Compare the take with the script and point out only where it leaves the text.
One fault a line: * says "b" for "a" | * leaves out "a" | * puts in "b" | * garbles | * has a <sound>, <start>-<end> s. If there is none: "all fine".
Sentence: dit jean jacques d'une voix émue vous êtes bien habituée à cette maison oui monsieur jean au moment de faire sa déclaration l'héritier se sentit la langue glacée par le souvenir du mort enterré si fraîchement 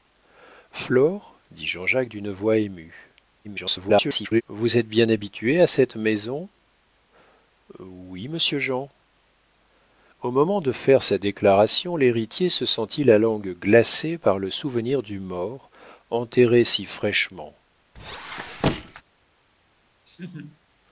* garbles
* has a squeak, 18.0-19.0 s
* has a laugh, 20.1-20.6 s